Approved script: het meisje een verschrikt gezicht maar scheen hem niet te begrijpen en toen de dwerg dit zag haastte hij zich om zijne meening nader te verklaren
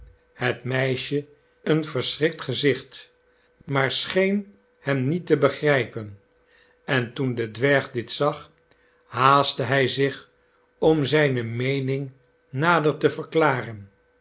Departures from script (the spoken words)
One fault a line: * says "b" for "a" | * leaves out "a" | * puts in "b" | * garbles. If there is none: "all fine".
all fine